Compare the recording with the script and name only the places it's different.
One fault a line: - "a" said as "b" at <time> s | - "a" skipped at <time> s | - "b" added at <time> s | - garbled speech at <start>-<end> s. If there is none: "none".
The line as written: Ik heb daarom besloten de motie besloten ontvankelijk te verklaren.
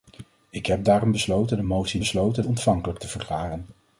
none